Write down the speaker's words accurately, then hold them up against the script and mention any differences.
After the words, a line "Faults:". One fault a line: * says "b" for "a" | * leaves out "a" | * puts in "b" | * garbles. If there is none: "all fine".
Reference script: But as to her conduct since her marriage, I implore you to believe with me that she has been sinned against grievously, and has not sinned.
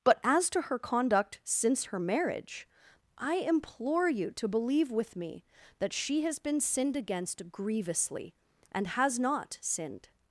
But as to her conduct since her marriage, I implore you to believe with me that she has been sinned against grievously, and has not sinned.
Faults:
all fine